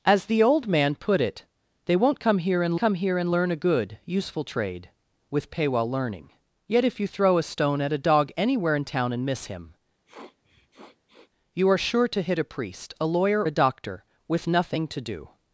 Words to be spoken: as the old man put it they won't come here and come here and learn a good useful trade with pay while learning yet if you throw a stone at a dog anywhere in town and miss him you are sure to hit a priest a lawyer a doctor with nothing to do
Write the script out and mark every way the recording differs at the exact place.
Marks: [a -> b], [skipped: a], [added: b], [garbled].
as the old man put it they won't come here and come here and learn a good useful trade with pay while learning yet if you throw a stone at a dog anywhere in town and miss him you are sure to hit a priest a lawyer a doctor with nothing to do